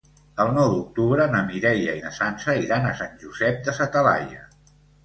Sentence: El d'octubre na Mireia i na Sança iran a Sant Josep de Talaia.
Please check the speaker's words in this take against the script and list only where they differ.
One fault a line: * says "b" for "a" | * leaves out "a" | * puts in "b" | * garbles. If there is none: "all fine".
* puts in "nou"
* puts in "sa"